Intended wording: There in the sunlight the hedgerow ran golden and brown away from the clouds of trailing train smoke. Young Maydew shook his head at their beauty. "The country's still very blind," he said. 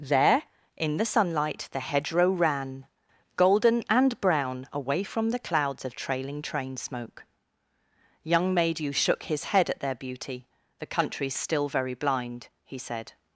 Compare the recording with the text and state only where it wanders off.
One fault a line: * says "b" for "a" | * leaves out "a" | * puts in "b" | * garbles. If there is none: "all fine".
all fine